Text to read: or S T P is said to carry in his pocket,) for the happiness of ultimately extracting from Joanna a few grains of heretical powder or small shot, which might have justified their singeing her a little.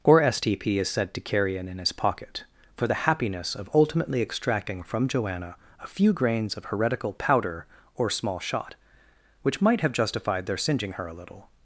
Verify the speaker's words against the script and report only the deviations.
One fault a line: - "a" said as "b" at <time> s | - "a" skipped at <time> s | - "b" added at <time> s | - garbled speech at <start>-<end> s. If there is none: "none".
- "in" added at 1.7 s